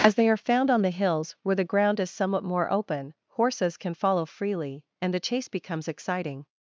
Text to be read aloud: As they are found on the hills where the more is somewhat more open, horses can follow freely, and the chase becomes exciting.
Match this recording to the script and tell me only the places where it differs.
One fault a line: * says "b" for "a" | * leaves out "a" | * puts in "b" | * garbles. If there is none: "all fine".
* says "ground" for "more"